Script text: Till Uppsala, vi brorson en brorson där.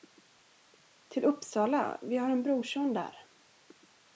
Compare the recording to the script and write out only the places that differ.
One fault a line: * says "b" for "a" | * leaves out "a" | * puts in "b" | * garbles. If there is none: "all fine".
* says "har" for "brorson"